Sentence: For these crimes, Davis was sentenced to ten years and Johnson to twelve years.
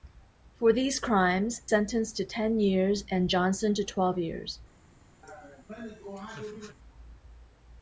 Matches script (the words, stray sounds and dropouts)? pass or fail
fail